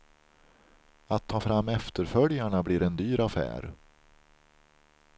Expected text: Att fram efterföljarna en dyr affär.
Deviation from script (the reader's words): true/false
true